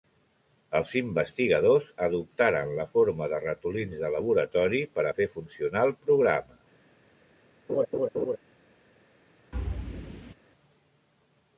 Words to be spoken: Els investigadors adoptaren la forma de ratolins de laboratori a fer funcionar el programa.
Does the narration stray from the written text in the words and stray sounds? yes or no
yes